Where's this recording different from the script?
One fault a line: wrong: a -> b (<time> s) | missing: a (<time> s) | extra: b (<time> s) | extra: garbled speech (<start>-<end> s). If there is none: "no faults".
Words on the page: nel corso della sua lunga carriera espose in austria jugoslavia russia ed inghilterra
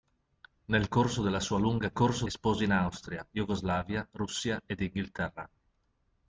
wrong: carriera -> corso (1.9 s)